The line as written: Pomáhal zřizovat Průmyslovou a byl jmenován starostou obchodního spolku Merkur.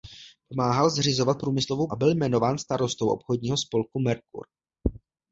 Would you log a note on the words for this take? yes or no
no